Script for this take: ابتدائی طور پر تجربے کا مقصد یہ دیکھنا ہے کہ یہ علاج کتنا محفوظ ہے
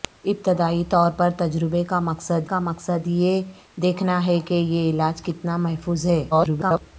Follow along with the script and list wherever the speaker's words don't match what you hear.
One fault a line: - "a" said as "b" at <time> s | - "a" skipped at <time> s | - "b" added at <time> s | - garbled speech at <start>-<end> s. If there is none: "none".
- "کا مقصد" added at 2.4 s
- garbled speech at 6.3-6.8 s